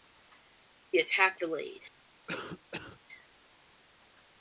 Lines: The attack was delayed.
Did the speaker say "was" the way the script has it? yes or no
no